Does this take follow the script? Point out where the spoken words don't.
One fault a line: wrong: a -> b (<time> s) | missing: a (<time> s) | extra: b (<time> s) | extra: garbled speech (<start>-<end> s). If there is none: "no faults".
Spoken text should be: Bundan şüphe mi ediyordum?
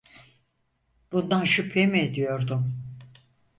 no faults